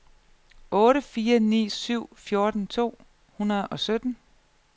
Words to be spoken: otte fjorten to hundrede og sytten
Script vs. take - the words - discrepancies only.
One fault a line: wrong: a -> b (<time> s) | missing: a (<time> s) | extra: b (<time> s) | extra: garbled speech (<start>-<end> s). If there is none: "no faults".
extra: fire ni syv (1.0 s)